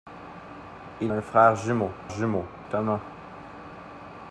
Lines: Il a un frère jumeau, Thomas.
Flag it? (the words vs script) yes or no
yes